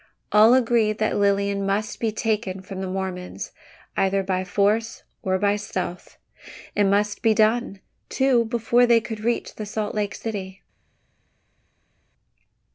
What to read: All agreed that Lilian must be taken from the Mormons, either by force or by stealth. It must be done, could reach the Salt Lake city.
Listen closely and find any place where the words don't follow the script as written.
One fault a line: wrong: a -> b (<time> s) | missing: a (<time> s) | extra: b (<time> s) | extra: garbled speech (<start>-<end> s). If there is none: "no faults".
extra: too before they (8.1 s)